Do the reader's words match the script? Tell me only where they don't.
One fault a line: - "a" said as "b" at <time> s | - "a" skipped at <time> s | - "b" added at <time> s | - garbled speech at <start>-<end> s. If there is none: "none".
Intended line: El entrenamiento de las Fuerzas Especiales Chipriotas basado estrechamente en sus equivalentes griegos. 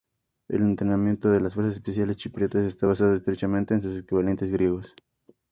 - "está" added at 2.6 s